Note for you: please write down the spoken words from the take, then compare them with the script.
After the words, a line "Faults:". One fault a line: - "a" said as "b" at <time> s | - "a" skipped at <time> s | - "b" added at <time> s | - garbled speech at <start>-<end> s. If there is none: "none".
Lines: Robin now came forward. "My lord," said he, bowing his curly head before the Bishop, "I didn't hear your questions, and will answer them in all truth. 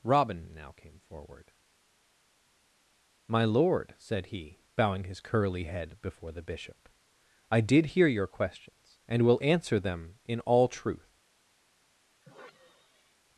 Robin now came forward. "My lord," said he, bowing his curly head before the Bishop, "I did hear your questions, and will answer them in all truth.
Faults:
- "didn't" said as "did" at 7.6 s